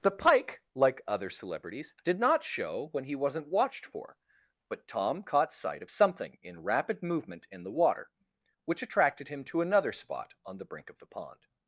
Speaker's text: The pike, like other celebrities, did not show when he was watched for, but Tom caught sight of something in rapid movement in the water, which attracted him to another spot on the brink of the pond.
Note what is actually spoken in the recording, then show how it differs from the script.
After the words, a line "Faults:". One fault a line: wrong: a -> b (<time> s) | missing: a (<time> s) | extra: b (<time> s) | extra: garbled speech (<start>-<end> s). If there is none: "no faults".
The pike, like other celebrities, did not show when he wasn't watched for, but Tom caught sight of something in rapid movement in the water, which attracted him to another spot on the brink of the pond.
Faults:
wrong: was -> wasn't (3.1 s)